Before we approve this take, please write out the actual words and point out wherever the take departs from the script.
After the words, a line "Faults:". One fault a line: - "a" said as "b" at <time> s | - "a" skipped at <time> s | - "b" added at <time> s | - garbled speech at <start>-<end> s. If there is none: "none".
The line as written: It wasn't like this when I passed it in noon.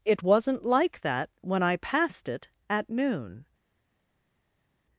It wasn't like that when I passed it at noon.
Faults:
- "this" said as "that" at 1.0 s
- "in" said as "at" at 2.7 s